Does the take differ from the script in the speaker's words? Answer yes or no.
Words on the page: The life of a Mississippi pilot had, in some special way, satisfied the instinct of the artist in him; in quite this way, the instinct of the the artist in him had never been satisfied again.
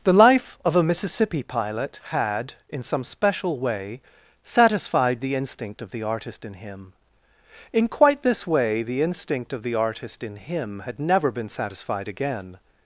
yes